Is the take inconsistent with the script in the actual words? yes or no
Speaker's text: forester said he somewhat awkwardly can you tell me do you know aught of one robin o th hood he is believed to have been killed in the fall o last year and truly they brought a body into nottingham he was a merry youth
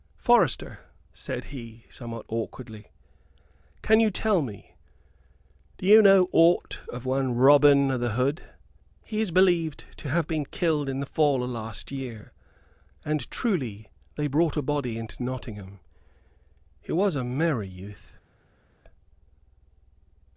no